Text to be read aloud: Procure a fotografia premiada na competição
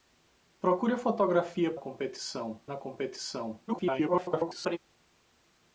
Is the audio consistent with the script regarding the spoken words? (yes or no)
no